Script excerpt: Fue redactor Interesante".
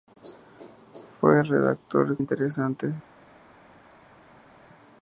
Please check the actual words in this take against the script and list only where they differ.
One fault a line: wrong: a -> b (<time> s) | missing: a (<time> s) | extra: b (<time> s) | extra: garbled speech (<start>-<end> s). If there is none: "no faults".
no faults